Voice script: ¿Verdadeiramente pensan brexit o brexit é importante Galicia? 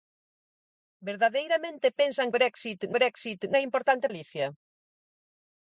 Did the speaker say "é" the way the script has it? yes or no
yes